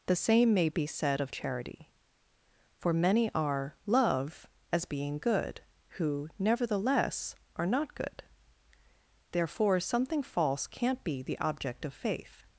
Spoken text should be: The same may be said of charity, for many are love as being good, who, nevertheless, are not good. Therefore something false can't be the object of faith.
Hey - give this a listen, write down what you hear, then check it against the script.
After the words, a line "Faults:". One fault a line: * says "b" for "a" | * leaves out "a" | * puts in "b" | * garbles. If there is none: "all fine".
The same may be said of charity, for many are love as being good, who, nevertheless, are not good. Therefore something false can't be the object of faith.
Faults:
all fine